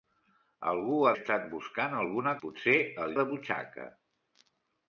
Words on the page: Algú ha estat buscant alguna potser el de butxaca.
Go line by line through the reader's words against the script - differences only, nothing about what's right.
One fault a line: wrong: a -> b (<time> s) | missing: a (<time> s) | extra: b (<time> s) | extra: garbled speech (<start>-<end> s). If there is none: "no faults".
no faults